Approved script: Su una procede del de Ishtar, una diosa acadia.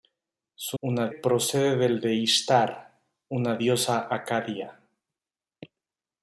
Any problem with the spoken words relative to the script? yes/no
no